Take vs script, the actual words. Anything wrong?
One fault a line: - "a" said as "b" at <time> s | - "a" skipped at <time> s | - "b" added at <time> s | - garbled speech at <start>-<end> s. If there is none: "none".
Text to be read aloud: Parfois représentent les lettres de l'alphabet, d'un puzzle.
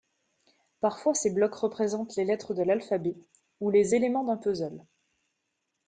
- "ces blocs" added at 1.1 s
- "ou les éléments" added at 3.6 s